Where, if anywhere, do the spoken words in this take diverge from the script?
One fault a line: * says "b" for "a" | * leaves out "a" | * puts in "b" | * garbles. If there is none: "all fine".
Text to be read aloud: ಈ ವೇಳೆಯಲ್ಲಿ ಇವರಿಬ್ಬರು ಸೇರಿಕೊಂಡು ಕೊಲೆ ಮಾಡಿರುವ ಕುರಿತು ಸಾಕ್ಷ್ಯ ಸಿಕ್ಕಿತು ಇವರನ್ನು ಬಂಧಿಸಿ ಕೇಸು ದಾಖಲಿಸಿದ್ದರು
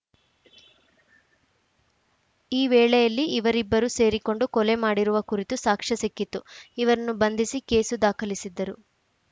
all fine